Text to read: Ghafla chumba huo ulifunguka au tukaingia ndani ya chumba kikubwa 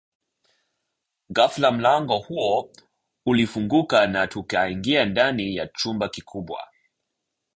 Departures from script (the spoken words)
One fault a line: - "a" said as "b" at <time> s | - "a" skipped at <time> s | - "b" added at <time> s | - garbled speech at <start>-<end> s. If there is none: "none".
- "chumba" said as "mlango" at 1.7 s
- "au" said as "na" at 4.1 s